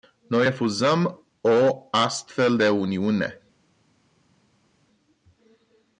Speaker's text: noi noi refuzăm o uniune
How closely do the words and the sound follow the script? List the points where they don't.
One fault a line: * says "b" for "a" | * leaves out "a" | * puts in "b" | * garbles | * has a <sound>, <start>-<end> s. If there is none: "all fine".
* leaves out "noi"
* puts in "astfel de"